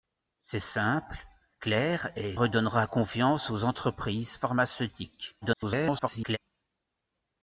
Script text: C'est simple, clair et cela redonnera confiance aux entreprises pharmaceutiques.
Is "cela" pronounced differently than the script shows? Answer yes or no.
yes